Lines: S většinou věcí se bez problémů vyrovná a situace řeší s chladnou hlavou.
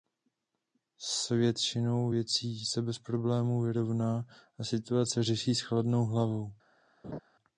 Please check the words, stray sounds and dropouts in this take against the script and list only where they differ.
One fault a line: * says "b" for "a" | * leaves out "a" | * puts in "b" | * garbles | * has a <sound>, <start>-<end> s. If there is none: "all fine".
* has a laugh, 7.0-7.2 s